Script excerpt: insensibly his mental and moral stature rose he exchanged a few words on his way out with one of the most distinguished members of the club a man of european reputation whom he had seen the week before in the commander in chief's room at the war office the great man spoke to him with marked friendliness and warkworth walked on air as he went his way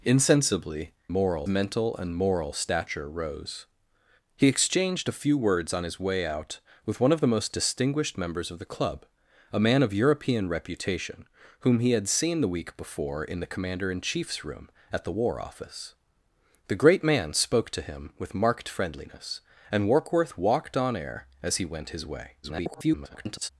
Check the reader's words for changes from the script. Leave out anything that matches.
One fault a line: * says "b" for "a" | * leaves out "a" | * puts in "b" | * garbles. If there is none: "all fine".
* says "moral" for "his"
* garbles